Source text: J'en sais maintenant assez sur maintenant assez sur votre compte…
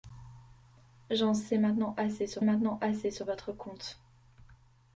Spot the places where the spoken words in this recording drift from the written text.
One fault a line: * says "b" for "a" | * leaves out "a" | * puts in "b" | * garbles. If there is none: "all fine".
all fine